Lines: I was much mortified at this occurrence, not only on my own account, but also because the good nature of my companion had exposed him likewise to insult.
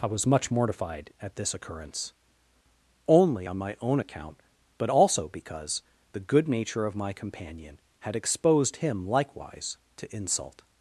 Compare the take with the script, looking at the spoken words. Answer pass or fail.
fail